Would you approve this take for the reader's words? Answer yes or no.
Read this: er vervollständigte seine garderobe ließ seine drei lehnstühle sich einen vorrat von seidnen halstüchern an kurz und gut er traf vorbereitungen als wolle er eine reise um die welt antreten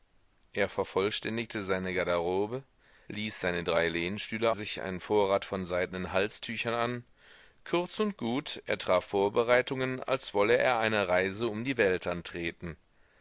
yes